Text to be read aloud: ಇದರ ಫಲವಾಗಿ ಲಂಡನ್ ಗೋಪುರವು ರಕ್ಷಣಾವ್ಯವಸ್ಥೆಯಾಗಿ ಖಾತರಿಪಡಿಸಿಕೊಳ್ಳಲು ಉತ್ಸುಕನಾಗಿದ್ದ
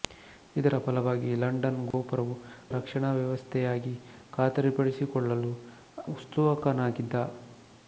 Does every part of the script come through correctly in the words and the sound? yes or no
no